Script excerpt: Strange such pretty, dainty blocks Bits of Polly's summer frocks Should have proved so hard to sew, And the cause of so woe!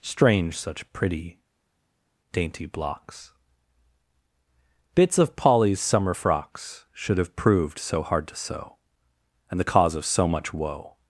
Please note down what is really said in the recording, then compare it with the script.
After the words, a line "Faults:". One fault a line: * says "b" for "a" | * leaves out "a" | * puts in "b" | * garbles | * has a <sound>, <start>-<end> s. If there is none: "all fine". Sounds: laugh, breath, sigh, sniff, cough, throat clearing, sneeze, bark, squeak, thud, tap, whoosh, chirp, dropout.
Strange such pretty, dainty blocks Bits of Polly's summer frocks Should have proved so hard to sew, And the cause of so much woe!
Faults:
* puts in "much"